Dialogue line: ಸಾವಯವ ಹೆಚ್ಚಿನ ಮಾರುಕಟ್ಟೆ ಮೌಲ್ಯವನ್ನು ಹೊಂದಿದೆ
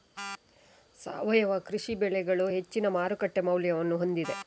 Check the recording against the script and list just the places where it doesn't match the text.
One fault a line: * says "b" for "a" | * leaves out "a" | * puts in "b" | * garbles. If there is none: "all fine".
* puts in "ಕೃಷಿ ಬೆಳೆಗಳು"